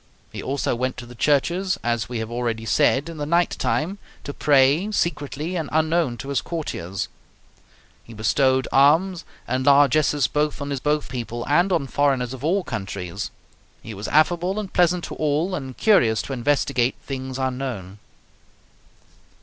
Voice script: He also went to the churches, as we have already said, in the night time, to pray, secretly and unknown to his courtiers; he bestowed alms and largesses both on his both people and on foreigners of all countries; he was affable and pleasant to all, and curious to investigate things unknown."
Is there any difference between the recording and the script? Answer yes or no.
no